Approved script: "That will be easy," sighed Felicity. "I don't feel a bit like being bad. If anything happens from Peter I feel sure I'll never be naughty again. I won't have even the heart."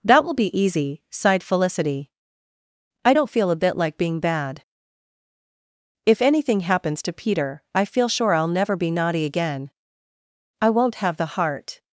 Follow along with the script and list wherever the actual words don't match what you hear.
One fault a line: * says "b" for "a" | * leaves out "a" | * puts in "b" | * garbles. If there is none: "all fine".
* says "to" for "from"
* leaves out "even"